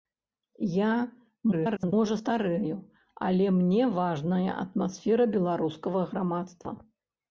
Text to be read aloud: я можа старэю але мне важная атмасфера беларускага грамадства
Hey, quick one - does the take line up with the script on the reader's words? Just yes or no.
no